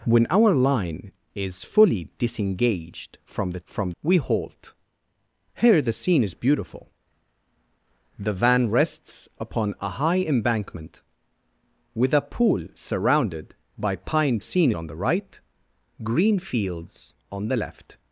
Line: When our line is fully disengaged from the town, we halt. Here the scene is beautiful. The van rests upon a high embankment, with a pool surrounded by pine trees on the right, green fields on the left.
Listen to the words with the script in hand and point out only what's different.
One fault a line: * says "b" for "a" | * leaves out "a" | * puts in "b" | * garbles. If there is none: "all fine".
* says "from" for "town"
* says "scene" for "trees"